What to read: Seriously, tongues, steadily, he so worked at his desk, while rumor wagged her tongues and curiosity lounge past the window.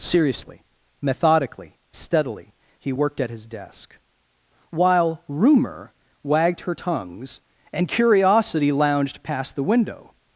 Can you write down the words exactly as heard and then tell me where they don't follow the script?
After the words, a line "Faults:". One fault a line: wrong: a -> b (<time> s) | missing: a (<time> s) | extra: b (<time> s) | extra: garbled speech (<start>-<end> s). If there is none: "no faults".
Seriously, methodically, steadily, he worked at his desk, while rumor wagged her tongues and curiosity lounged past the window.
Faults:
wrong: tongues -> methodically (1.0 s)
missing: so (2.9 s)
wrong: lounge -> lounged (8.7 s)